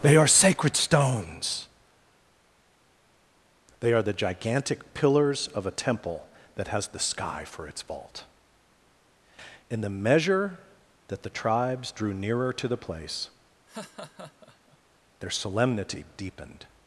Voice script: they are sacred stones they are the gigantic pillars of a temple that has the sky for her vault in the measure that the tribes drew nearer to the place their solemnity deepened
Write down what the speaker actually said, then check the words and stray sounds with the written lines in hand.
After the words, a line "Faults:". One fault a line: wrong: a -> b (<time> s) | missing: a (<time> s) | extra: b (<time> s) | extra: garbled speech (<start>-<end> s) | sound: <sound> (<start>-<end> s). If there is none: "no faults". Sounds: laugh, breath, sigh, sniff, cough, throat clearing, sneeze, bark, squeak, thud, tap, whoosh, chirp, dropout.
they are sacred stones they are the gigantic pillars of a temple that has the sky for its vault in the measure that the tribes drew nearer to the place their solemnity deepened
Faults:
wrong: her -> its (7.7 s)
sound: laugh (13.7-14.8 s)